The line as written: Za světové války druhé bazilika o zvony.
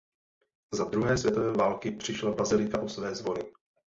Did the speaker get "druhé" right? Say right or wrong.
wrong